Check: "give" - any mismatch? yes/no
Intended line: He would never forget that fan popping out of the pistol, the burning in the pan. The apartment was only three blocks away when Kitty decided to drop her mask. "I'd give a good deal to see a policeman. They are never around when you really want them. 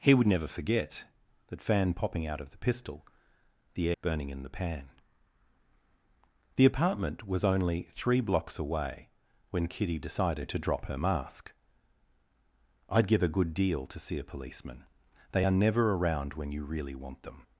no